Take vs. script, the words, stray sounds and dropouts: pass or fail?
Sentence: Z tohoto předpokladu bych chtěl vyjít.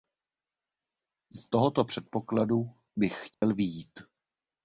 fail